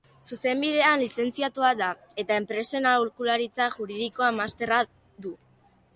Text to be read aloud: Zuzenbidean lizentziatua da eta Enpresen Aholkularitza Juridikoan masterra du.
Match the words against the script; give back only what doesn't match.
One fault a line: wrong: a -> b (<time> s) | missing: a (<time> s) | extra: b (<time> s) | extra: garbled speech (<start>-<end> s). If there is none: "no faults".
no faults